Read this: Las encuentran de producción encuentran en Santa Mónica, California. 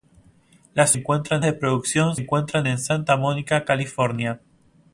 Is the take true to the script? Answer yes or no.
yes